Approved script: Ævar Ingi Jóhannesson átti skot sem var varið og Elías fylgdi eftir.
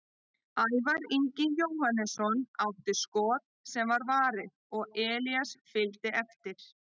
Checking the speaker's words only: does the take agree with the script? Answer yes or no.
yes